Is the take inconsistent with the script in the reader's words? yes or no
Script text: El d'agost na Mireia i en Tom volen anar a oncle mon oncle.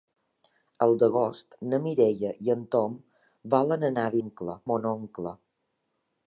no